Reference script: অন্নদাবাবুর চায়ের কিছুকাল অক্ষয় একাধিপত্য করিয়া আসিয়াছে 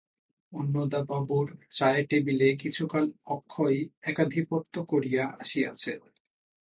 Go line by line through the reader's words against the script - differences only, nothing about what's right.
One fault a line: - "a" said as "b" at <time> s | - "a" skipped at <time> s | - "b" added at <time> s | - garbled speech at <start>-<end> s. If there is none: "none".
- "টেবিলে" added at 2.1 s